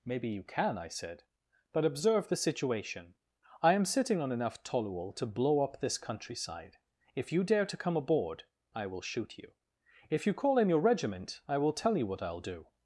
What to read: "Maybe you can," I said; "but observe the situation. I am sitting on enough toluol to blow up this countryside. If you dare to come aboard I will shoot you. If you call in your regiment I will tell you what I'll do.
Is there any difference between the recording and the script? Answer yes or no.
no